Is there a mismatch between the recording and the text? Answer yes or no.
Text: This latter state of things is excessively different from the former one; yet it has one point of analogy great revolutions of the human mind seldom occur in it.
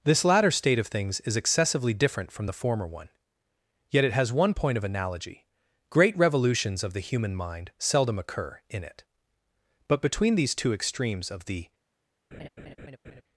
yes